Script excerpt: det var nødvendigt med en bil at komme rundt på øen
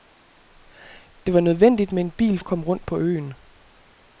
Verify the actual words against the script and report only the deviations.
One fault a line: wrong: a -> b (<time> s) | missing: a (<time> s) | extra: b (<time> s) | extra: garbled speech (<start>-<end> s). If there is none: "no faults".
no faults